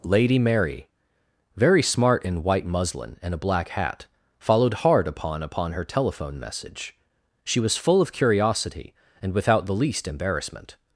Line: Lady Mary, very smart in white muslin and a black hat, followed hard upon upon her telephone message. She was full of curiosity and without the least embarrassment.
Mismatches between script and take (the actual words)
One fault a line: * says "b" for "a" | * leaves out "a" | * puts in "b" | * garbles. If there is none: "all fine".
all fine